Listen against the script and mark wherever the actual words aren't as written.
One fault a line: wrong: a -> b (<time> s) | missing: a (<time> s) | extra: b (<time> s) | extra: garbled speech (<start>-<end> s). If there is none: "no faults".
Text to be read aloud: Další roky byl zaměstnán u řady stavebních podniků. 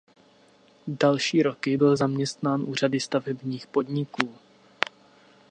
no faults